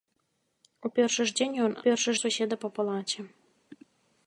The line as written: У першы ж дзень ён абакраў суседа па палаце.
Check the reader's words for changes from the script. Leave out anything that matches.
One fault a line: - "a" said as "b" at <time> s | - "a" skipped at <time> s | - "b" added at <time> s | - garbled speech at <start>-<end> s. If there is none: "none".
- "абакраў" said as "першы" at 1.8 s